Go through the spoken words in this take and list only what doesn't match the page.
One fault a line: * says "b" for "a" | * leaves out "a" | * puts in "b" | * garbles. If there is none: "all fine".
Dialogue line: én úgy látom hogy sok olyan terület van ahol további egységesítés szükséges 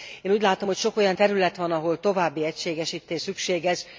all fine